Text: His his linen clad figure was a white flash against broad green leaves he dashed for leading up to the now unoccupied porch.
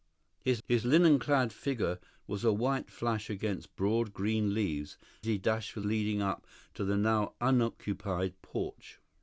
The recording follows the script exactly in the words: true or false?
true